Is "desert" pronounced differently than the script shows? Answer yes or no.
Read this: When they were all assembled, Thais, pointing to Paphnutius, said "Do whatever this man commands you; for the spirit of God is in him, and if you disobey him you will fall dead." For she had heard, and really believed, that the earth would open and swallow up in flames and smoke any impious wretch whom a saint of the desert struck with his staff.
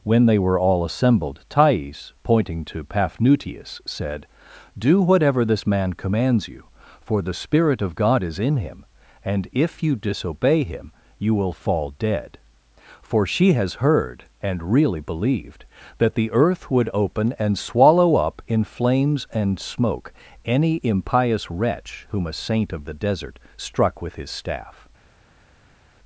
no